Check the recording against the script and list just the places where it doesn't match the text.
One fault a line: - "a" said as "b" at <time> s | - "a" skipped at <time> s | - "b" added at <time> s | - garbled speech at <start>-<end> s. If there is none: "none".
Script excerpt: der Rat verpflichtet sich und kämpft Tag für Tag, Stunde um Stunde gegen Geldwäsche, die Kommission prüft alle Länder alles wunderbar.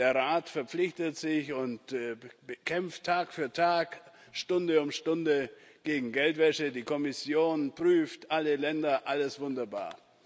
none